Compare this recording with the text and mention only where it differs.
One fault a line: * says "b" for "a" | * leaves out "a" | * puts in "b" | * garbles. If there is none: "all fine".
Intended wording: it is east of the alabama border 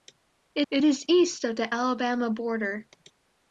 * puts in "it"